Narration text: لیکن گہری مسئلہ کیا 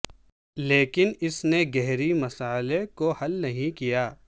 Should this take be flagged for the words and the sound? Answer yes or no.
yes